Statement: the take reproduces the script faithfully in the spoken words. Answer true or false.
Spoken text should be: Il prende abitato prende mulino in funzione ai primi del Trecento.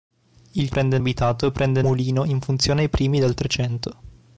true